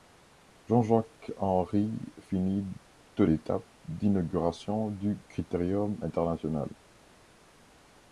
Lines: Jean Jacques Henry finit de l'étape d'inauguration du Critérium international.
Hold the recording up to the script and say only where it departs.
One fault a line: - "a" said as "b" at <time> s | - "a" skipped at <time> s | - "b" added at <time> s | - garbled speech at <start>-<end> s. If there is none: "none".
none